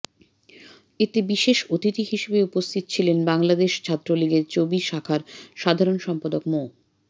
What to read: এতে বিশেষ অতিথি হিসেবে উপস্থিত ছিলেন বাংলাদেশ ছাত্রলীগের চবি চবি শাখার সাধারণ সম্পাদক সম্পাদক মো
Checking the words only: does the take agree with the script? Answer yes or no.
no